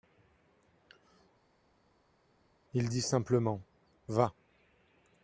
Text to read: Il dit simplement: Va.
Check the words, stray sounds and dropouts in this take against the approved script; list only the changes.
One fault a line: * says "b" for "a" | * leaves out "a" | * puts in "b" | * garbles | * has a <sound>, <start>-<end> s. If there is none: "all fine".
all fine